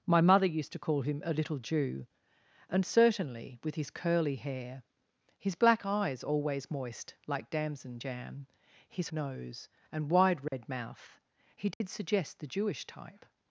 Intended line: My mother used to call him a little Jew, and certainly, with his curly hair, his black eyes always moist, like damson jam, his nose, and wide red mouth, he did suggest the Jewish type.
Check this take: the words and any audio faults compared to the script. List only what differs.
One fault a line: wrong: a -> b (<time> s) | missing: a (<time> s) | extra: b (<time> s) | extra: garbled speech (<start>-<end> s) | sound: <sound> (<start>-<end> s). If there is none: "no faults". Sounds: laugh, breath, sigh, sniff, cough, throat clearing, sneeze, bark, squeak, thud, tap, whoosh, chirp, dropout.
sound: dropout (10.5-10.5 s)
sound: dropout (11.7-11.8 s)